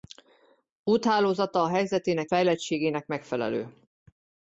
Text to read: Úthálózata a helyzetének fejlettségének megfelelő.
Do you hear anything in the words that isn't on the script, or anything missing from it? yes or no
no